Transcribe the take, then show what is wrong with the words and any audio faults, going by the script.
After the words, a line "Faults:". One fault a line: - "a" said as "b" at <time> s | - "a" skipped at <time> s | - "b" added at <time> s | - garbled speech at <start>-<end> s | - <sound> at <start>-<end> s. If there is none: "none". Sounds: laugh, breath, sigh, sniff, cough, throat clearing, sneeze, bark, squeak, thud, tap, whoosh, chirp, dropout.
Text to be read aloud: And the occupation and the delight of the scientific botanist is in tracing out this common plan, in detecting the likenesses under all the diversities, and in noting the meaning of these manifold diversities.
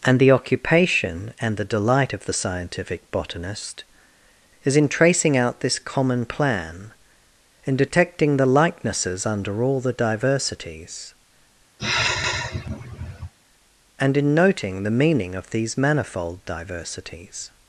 And the occupation and the delight of the scientific botanist is in tracing out this common plan, in detecting the likenesses under all the diversities, and in noting the meaning of these manifold diversities.
Faults:
- sigh at 11.8-13.3 s